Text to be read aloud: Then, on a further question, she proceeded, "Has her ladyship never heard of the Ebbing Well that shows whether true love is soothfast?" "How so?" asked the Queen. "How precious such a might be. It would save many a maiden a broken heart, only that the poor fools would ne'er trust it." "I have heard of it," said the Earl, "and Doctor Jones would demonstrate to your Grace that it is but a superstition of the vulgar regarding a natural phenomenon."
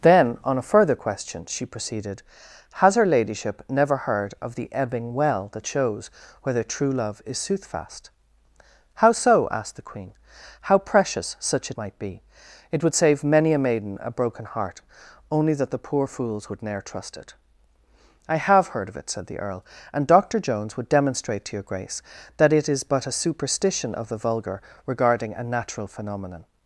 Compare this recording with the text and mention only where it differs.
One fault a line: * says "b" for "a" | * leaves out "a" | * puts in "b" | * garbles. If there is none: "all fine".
all fine